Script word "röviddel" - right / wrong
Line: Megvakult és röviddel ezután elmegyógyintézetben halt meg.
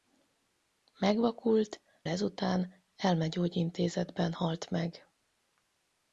wrong